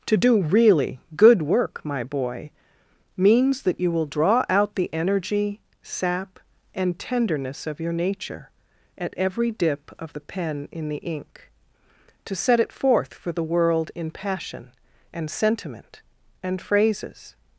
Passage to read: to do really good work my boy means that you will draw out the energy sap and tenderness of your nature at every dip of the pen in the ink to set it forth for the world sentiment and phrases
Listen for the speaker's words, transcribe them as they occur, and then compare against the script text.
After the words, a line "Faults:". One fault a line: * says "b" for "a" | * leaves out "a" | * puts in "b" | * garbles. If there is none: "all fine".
to do really good work my boy means that you will draw out the energy sap and tenderness of your nature at every dip of the pen in the ink to set it forth for the world in passion and sentiment and phrases
Faults:
* puts in "in passion and"